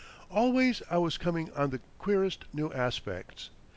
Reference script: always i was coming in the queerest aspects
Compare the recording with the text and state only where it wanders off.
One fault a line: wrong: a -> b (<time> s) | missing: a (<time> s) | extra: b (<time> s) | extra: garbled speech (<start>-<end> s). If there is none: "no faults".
wrong: in -> on (1.5 s)
extra: new (2.5 s)